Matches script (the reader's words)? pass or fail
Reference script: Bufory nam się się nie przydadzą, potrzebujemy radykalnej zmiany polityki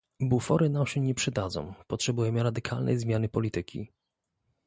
fail